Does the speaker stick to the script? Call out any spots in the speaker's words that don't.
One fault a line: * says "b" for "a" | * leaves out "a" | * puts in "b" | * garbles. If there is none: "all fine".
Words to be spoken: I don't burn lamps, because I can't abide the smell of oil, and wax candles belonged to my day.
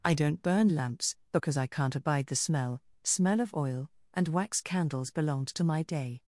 * puts in "smell"